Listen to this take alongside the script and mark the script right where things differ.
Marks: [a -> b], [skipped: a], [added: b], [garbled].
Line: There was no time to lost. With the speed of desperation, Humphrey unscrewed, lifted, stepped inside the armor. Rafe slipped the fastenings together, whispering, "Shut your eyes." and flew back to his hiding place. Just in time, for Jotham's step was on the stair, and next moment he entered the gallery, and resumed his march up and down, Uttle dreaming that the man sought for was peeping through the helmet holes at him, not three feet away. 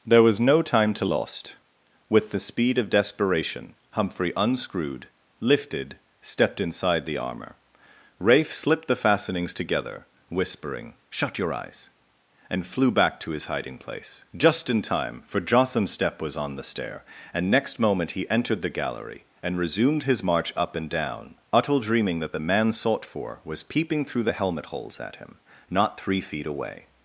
There was no time to lost. With the speed of desperation, Humphrey unscrewed, lifted, stepped inside the armor. Rafe slipped the fastenings together, whispering, "Shut your eyes." and flew back to his hiding place. Just in time, for Jotham's step was on the stair, and next moment he entered the gallery, and resumed his march up and down, Uttle dreaming that the man sought for was peeping through the helmet holes at him, not three feet away.